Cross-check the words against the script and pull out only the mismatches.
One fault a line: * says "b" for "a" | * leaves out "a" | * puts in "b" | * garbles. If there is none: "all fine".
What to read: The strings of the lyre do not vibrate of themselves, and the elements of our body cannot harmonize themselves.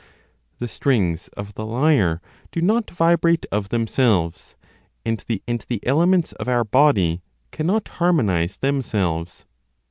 * puts in "and the"